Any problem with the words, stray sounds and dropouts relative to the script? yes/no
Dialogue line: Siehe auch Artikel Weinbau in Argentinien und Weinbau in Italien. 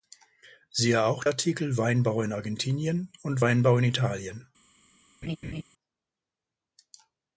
yes